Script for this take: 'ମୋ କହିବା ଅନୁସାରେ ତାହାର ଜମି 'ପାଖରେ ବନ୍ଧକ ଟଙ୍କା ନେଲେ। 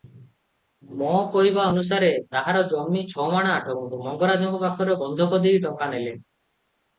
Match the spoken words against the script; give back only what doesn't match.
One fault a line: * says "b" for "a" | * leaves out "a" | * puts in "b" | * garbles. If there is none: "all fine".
* puts in "ଛମାଣ ଆଠଗୁଣ୍ଠ ମଙ୍ଗରାଜଙ୍କ"
* puts in "ଦେଇ"